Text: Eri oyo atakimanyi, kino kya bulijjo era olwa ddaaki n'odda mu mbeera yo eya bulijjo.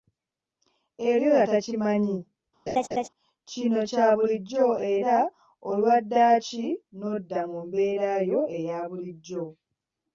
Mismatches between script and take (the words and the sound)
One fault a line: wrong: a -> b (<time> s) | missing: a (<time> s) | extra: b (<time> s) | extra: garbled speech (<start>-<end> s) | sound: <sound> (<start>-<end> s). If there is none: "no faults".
sound: laugh (2.7-3.1 s)